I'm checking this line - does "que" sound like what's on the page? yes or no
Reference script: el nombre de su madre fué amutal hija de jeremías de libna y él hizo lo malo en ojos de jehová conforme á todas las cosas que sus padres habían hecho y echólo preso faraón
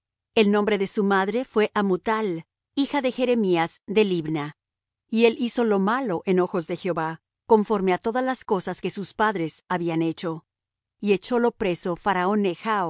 yes